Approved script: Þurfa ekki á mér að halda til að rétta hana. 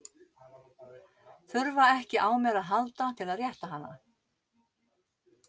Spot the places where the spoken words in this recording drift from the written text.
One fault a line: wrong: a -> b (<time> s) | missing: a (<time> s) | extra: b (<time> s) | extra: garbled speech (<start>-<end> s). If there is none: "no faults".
no faults